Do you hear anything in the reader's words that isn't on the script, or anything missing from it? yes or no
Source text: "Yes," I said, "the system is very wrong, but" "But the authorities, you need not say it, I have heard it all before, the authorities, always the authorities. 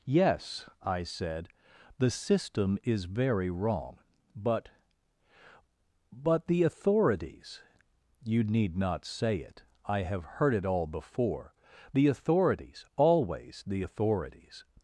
no